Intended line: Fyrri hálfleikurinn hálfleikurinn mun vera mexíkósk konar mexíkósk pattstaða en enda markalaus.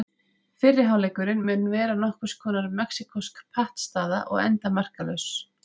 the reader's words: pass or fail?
fail